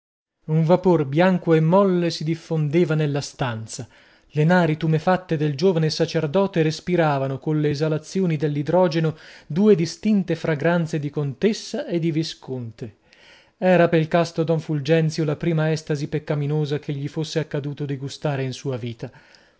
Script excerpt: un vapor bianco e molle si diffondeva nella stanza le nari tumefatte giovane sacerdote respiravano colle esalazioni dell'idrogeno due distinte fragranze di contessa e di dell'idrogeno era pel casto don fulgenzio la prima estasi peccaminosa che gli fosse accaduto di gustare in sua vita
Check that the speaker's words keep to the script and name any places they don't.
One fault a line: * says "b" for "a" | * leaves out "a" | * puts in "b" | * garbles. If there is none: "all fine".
* puts in "del"
* says "visconte" for "dell'idrogeno"